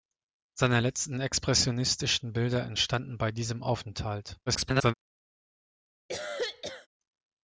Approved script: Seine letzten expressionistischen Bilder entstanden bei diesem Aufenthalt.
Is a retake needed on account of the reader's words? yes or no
yes